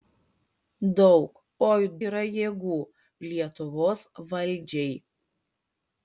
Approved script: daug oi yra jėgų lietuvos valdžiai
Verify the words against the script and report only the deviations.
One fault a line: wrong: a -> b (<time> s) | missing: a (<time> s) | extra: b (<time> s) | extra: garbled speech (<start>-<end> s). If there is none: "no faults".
no faults